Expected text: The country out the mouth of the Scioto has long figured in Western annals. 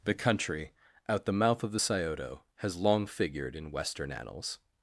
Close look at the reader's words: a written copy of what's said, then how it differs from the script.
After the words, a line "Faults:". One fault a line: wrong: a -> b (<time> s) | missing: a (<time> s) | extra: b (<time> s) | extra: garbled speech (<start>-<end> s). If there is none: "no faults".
The country out the mouth of the Scioto has long figured in Western annals.
Faults:
no faults